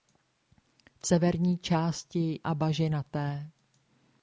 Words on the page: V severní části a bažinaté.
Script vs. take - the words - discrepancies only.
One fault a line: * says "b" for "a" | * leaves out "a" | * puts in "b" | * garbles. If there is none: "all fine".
all fine